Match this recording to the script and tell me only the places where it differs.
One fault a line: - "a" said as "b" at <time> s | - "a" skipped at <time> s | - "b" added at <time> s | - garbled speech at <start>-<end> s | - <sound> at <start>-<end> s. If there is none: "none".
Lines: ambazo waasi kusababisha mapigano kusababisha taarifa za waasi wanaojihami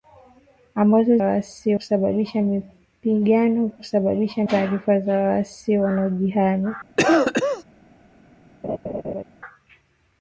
- cough at 7.0-7.6 s
- laugh at 8.6-9.2 s